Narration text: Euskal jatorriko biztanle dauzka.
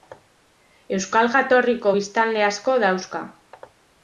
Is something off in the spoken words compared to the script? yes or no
yes